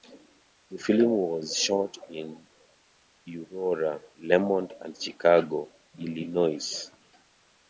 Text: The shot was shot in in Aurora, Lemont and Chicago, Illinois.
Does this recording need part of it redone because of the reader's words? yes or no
yes